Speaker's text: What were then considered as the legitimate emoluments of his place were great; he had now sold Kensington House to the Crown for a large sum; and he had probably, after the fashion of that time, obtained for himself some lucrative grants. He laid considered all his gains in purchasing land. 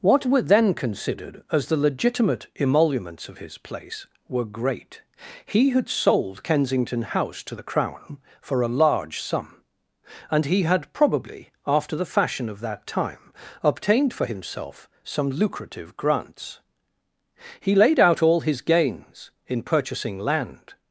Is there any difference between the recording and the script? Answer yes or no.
yes